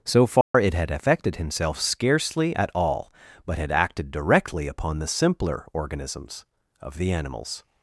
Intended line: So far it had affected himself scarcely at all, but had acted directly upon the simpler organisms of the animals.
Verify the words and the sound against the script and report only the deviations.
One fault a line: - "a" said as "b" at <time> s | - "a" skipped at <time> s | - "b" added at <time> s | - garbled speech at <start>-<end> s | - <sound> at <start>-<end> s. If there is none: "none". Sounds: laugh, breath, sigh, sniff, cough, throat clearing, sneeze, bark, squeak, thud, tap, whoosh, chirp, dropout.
- dropout at 0.4-0.5 s